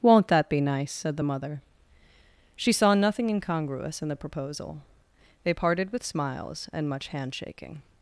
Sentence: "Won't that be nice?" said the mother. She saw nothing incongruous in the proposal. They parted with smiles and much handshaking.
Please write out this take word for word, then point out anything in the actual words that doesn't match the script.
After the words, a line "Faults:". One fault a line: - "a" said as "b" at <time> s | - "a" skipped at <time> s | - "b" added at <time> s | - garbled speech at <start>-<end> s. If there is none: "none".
"Won't that be nice?" said the mother. She saw nothing incongruous in the proposal. They parted with smiles and much handshaking.
Faults:
none